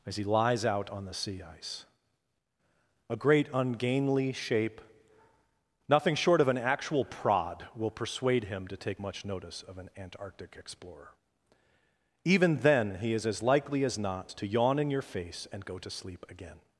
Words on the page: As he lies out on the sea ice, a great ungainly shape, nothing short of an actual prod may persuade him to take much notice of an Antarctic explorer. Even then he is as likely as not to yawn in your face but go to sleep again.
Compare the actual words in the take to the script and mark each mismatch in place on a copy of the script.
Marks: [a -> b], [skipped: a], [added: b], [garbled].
As he lies out on the sea ice, a great ungainly shape, nothing short of an actual prod [may -> will] persuade him to take much notice of an Antarctic explorer. Even then he is as likely as not to yawn in your face [but -> and] go to sleep again.